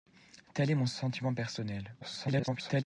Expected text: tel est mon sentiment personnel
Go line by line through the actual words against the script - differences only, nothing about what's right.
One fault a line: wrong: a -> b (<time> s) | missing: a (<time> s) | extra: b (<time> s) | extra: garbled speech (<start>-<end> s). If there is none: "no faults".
extra: garbled speech (2.0-2.8 s)